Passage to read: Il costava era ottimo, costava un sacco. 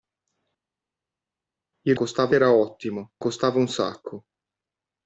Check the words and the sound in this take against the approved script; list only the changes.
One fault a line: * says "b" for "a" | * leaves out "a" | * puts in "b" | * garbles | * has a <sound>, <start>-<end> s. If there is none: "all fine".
all fine